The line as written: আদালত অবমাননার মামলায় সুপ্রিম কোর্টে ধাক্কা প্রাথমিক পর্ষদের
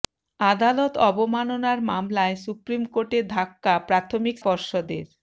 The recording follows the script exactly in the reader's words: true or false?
true